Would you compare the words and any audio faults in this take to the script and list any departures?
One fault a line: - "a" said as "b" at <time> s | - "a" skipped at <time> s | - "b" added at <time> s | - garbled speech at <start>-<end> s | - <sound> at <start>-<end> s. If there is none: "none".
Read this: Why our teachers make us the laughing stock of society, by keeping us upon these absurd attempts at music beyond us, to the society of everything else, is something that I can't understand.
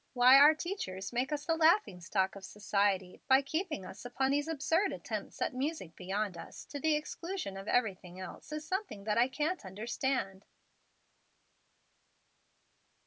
- "society" said as "exclusion" at 7.0 s